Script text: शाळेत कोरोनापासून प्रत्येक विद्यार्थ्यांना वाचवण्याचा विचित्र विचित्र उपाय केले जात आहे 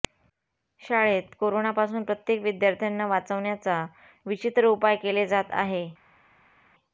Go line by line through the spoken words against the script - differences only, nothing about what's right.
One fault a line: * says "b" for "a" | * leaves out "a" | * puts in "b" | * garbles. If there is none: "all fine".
* leaves out "विचित्र"